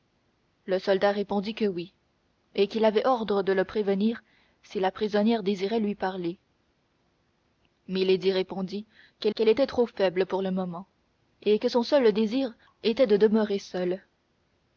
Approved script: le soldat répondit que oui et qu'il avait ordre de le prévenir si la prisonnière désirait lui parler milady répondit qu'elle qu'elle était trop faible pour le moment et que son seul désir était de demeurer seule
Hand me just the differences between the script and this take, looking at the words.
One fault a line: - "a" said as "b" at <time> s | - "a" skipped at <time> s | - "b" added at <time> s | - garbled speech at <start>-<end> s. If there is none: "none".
none